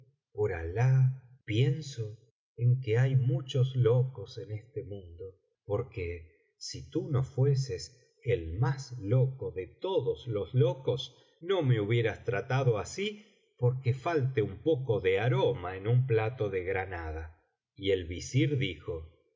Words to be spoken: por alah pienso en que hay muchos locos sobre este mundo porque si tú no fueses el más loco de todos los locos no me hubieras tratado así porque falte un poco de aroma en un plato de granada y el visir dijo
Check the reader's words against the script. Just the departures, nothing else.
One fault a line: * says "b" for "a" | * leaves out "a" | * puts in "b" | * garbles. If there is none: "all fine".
* says "en" for "sobre"